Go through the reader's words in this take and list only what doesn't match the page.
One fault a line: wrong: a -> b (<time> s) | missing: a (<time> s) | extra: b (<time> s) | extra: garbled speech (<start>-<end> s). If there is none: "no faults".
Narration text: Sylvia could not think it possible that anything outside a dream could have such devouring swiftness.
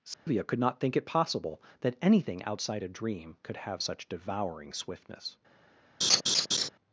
no faults